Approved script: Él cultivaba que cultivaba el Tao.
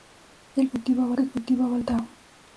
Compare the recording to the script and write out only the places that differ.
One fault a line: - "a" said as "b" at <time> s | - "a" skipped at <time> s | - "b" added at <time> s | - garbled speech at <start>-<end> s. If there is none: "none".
none